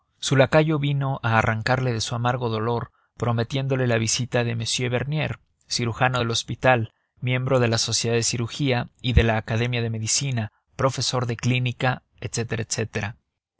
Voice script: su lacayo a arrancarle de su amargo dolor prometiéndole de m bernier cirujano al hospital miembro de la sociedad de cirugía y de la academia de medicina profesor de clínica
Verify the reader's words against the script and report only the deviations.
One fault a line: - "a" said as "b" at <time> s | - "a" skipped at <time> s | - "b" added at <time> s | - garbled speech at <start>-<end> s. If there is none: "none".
- "vino" added at 0.8 s
- "la visita" added at 3.9 s
- "al" said as "del" at 6.2 s